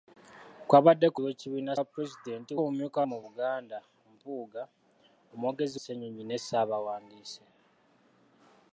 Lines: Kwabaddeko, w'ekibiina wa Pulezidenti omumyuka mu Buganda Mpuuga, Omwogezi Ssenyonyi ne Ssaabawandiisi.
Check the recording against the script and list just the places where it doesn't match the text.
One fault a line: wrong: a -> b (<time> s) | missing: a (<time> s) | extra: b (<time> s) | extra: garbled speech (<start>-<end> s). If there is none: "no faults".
no faults